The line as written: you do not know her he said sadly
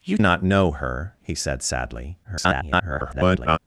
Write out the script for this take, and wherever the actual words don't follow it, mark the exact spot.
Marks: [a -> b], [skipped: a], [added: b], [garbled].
you [skipped: do] not know her he said sadly [garbled]